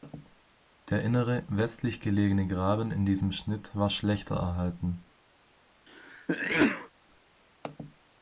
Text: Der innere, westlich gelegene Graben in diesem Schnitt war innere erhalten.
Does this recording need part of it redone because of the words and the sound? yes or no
yes